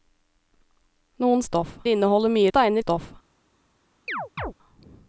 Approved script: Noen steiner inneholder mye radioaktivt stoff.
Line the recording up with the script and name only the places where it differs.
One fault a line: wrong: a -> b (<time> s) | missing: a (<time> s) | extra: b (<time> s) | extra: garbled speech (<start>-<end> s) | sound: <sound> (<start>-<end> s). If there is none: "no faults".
wrong: steiner -> stoff (1.5 s)
wrong: radioaktivt -> steiner (2.5 s)
sound: chirp (4.1-4.5 s)